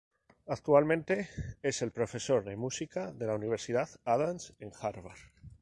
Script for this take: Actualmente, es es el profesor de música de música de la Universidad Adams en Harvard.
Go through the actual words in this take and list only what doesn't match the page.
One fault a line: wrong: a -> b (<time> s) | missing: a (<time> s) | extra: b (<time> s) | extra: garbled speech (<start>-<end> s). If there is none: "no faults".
missing: es (1.8 s)
missing: música de (3.3 s)